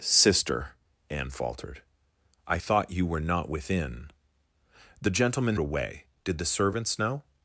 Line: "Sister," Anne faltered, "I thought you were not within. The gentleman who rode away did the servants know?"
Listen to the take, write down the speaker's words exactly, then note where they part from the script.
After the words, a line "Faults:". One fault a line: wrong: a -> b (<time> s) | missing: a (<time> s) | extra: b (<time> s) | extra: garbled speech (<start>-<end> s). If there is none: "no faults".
"Sister," Anne faltered, "I thought you were not within. The gentleman away did the servants know?"
Faults:
missing: who rode (5.6 s)